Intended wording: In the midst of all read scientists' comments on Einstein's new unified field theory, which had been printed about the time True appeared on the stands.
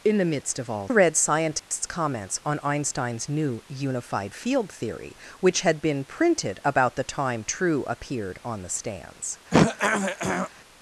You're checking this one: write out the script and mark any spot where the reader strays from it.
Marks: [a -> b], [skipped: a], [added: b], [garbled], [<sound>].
In the midst of all read scientists' [dropout] comments on Einstein's new unified field theory, which had been printed about the time True appeared on the stands. [throat clearing]